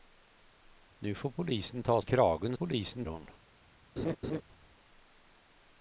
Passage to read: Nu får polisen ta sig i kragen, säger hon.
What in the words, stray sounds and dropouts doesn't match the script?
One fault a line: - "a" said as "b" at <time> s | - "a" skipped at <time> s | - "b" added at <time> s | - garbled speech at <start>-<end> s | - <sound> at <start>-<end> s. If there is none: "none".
- "sig" skipped at 2.0 s
- "säger" said as "polisen" at 2.5 s
- laugh at 4.0-4.4 s